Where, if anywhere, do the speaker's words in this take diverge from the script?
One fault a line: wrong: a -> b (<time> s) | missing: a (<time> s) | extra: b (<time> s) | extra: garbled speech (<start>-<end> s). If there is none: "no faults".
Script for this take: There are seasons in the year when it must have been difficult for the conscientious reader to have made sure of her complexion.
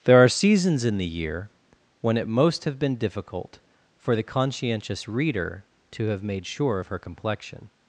wrong: must -> most (2.3 s)